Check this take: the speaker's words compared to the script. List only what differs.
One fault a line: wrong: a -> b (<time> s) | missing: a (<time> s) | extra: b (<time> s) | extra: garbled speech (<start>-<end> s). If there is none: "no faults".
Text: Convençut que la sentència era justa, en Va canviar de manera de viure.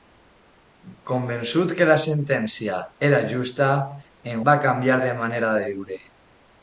no faults